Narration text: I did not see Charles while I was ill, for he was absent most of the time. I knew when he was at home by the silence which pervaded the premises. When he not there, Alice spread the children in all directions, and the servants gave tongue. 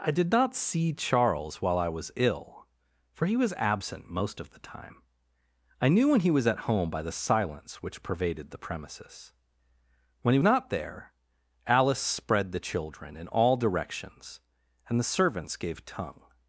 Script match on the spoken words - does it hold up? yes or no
yes